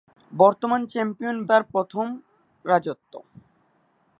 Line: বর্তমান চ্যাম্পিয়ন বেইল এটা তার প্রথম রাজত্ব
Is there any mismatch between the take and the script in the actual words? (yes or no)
yes